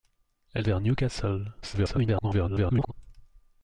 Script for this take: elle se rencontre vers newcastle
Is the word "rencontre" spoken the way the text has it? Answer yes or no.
no